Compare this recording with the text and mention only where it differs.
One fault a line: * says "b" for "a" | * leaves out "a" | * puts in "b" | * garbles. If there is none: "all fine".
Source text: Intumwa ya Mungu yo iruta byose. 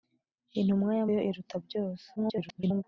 * leaves out "Mungu"
* garbles